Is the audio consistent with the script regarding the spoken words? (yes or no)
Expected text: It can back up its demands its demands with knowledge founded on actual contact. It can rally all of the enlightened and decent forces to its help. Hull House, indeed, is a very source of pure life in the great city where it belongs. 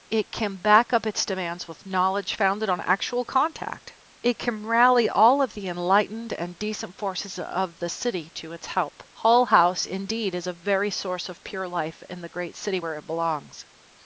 no